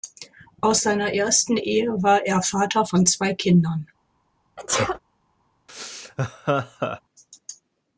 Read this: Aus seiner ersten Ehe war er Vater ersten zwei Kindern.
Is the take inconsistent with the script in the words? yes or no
yes